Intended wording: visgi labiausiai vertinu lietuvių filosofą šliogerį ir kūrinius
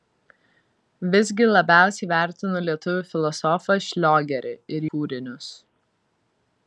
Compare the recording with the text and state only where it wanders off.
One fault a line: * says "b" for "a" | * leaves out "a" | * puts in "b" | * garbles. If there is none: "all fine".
all fine